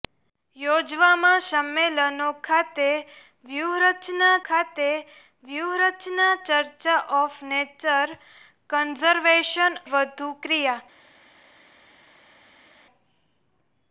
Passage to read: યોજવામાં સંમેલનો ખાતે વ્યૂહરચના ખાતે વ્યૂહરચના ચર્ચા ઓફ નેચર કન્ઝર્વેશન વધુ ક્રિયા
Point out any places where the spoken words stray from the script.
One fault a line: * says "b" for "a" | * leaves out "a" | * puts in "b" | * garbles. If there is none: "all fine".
all fine